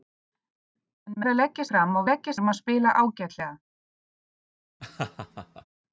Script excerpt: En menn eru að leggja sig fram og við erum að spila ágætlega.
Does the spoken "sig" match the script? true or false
false